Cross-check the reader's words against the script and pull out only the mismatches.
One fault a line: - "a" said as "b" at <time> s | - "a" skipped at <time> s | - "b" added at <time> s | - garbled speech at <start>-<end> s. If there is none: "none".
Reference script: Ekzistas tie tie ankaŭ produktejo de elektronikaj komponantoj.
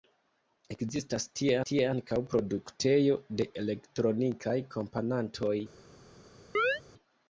none